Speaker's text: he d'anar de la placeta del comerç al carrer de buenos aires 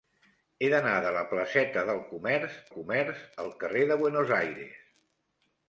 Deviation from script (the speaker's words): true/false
true